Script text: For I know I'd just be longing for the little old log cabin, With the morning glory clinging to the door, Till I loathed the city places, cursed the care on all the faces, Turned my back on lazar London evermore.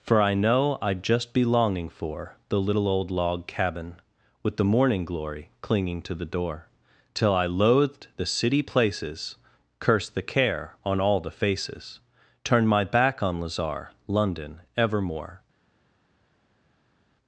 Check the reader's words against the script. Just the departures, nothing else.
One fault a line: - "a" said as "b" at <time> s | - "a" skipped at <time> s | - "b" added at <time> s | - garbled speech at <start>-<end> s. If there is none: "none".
none